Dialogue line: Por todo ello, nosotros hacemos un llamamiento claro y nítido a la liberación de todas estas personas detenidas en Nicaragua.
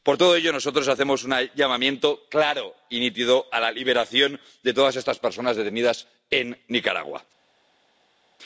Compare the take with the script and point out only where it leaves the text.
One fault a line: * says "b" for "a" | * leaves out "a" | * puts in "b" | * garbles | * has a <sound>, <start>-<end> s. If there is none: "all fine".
all fine